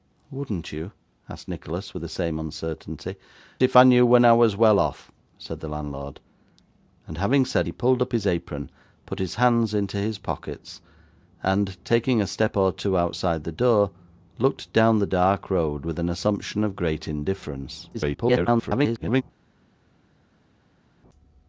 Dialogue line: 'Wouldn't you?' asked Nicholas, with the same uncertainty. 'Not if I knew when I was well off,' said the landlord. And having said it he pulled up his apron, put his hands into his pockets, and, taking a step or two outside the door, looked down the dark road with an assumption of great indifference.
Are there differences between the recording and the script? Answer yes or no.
yes